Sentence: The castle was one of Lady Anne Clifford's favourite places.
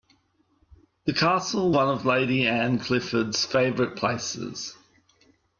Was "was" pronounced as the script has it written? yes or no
no